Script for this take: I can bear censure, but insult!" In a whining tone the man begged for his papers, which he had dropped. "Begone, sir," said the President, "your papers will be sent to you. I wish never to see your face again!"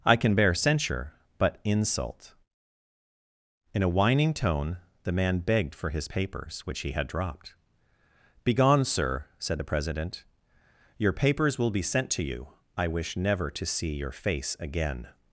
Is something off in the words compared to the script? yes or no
no